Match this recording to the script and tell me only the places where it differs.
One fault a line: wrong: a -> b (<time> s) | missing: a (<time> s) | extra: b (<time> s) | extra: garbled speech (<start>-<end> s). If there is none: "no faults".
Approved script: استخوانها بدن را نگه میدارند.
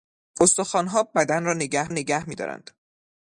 extra: نگه (1.9 s)